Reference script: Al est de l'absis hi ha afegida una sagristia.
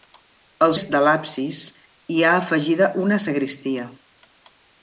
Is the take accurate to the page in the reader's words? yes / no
yes